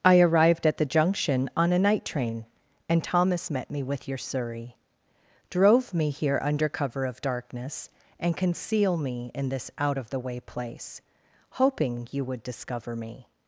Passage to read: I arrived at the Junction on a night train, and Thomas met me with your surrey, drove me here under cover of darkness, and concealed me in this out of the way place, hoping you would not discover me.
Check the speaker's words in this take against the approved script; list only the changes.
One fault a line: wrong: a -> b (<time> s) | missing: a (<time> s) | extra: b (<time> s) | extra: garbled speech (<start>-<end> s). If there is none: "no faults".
wrong: concealed -> conceal (8.4 s)
missing: not (12.4 s)